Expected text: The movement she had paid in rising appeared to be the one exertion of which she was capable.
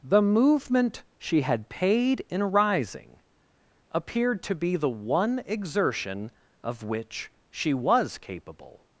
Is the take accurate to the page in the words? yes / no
yes